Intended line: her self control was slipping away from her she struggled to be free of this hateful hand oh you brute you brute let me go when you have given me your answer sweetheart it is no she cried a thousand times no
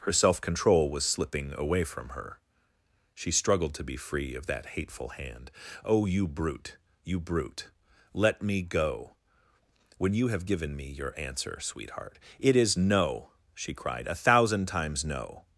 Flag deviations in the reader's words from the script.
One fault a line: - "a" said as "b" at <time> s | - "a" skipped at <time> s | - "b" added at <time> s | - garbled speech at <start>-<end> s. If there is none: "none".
- "this" said as "that" at 4.5 s